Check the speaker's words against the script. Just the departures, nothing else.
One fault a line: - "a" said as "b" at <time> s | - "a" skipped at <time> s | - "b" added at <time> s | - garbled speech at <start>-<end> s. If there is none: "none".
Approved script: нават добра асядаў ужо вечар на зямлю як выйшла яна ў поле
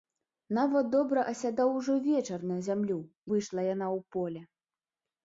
- "як" skipped at 3.0 s